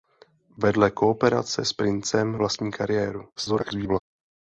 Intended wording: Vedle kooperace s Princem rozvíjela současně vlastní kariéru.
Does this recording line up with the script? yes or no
no